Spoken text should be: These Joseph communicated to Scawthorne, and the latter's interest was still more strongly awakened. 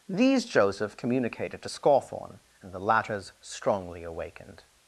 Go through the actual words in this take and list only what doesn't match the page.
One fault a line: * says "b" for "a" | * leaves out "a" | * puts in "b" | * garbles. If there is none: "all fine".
* leaves out "interest was still more"